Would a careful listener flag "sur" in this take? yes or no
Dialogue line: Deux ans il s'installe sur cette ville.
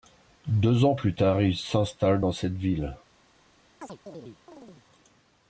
yes